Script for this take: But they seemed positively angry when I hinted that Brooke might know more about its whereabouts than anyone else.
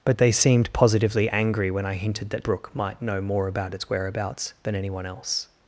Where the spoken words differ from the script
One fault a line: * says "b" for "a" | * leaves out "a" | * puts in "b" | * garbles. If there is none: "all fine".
all fine